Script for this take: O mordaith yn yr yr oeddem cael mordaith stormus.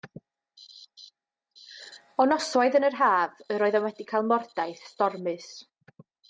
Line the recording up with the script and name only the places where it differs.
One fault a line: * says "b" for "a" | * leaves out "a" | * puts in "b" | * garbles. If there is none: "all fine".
* says "noswaith" for "mordaith"
* puts in "haf"
* puts in "wedi"